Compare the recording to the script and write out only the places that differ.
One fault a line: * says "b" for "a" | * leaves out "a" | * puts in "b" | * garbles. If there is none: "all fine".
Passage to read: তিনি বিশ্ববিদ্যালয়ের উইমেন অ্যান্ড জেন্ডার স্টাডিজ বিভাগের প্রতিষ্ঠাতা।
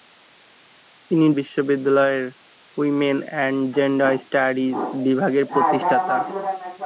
all fine